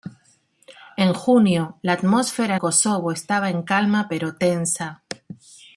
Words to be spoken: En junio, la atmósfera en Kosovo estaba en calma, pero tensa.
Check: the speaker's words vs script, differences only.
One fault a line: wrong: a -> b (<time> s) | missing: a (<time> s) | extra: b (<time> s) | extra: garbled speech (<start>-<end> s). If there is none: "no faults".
missing: en (2.5 s)